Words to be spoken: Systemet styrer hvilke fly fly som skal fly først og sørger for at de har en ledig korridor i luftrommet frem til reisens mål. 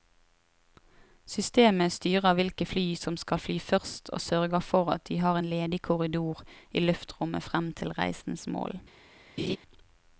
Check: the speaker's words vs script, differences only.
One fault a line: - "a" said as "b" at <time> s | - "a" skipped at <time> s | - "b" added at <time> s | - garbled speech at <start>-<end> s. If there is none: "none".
- "fly" skipped at 2.9 s